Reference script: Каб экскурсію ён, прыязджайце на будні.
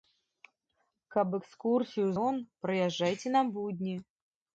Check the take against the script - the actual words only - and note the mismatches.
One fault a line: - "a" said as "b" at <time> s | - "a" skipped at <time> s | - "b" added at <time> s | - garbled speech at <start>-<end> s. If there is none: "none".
none